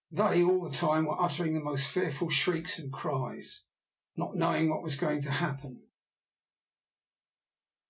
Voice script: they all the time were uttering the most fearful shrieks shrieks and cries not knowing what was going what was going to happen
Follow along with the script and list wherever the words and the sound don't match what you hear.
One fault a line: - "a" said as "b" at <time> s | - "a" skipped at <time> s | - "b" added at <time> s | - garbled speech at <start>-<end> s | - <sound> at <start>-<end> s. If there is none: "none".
- "shrieks" skipped at 2.8 s
- "what was going" skipped at 5.2 s